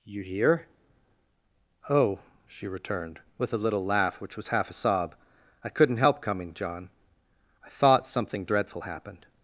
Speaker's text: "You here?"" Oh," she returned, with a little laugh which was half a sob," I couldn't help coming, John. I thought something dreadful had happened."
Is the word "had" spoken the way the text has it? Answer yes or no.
no